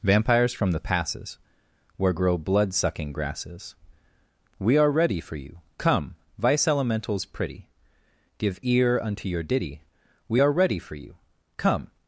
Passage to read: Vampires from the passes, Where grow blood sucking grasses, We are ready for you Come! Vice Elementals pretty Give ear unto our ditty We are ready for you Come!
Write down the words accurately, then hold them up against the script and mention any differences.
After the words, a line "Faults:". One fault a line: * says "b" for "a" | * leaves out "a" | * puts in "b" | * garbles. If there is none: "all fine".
Vampires from the passes, Where grow blood sucking grasses, We are ready for you Come! Vice Elementals pretty Give ear unto your ditty We are ready for you Come!
Faults:
* says "your" for "our"